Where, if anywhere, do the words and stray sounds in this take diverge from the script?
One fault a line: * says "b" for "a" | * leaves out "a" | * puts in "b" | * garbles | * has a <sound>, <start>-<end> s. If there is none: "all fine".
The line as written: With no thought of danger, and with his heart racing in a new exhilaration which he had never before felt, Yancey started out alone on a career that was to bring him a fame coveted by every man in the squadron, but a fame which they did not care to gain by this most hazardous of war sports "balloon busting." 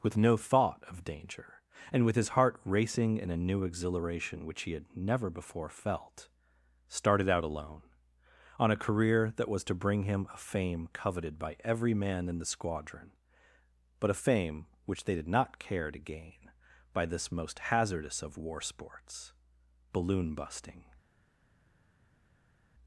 * leaves out "Yancey"